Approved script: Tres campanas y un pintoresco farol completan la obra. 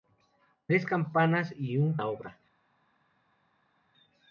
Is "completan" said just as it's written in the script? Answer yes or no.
no